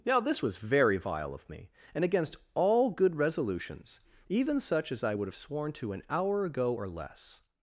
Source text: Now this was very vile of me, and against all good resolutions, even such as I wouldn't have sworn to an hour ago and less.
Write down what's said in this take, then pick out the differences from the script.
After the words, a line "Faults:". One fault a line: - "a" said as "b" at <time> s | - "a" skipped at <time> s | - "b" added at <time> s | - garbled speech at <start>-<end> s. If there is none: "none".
Now this was very vile of me, and against all good resolutions, even such as I would have sworn to an hour ago or less.
Faults:
- "wouldn't" said as "would" at 5.1 s
- "and" said as "or" at 6.7 s